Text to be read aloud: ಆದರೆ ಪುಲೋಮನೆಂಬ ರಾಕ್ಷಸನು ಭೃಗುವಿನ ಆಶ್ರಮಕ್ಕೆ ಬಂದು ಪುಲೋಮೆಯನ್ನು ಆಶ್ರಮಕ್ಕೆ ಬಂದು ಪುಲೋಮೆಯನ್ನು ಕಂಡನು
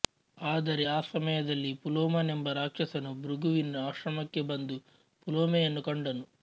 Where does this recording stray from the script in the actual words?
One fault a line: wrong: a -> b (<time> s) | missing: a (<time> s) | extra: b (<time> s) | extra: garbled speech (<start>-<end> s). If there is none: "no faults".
extra: ಆ ಸಮಯದಲ್ಲಿ (0.9 s)
missing: ಆಶ್ರಮಕ್ಕೆ ಬಂದು ಪುಲೋಮೆಯನ್ನು (5.8 s)